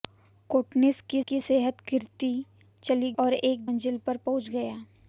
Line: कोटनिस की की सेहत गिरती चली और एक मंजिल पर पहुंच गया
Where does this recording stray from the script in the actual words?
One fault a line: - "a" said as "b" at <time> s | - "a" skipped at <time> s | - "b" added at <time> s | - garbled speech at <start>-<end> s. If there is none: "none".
none